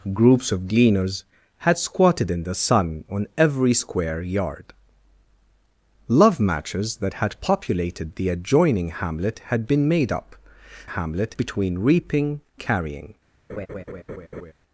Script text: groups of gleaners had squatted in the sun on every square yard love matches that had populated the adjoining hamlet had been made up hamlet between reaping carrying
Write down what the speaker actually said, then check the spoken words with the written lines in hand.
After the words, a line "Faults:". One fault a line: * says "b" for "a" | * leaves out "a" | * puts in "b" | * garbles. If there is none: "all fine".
groups of gleaners had squatted in the sun on every square yard love matches that had populated the adjoining hamlet had been made up hamlet between reaping carrying
Faults:
all fine